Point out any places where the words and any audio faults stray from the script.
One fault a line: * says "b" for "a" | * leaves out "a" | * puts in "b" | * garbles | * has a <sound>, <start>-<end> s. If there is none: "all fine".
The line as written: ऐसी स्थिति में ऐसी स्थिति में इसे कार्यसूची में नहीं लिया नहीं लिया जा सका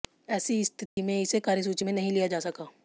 * has a dropout, 0.9-1.0 s
* leaves out "ऐसी स्थिति में"
* leaves out "नहीं लिया"